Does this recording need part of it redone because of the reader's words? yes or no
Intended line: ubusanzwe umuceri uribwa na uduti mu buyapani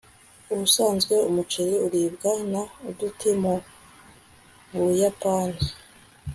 no